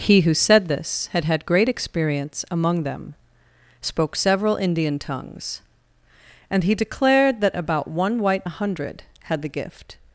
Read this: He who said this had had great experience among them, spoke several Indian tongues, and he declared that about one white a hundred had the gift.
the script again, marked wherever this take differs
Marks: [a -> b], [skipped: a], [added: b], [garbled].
He who said this had had great experience among them, spoke several Indian tongues, and he declared that about one white a hundred had the gift.